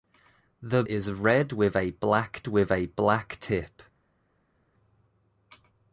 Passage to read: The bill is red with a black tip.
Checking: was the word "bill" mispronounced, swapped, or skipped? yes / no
yes